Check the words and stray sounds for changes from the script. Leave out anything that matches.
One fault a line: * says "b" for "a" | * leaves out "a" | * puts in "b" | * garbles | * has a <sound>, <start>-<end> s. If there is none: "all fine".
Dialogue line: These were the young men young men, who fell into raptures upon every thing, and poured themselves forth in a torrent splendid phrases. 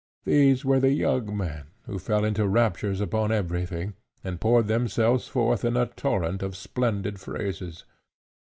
* leaves out "young men"
* puts in "of"